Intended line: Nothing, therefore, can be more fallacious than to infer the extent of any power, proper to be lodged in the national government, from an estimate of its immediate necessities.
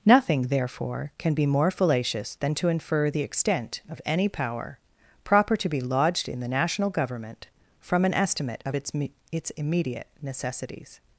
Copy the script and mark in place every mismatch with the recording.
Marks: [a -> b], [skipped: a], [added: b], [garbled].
Nothing, therefore, can be more fallacious than to infer the extent of any power, proper to be lodged in the national government, from an estimate of its [added: its] immediate necessities.